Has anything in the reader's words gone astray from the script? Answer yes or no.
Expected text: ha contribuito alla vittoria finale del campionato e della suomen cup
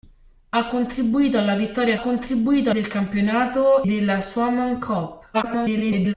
yes